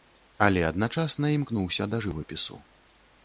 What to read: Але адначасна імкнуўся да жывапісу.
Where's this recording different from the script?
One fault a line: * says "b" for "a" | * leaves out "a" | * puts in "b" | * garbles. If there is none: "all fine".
all fine